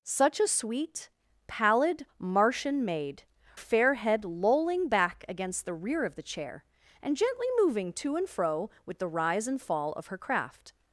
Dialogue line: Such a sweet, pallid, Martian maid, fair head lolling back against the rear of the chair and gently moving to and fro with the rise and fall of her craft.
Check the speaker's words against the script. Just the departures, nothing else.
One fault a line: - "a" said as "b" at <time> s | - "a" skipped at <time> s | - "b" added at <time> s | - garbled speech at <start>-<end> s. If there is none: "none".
none